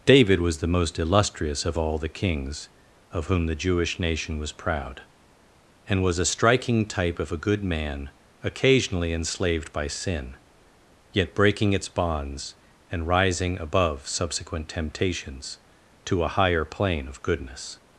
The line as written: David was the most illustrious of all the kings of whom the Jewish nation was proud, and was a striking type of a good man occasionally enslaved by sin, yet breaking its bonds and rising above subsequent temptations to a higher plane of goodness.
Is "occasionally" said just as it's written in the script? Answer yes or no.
yes